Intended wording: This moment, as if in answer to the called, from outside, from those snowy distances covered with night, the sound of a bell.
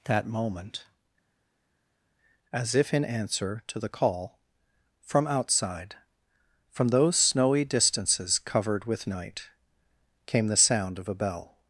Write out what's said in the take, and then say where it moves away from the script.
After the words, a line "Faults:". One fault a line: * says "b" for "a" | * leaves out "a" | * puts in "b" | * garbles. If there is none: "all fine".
That moment, as if in answer to the call, from outside, from those snowy distances covered with night, came the sound of a bell.
Faults:
* says "That" for "This"
* says "call" for "called"
* puts in "came"